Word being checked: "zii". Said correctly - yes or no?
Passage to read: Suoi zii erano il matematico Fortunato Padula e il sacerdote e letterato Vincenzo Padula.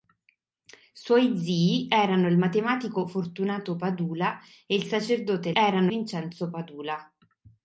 yes